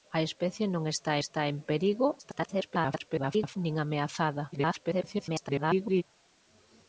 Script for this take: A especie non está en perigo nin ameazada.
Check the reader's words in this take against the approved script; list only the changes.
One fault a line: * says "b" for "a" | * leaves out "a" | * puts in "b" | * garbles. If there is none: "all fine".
* puts in "está"
* garbles
* garbles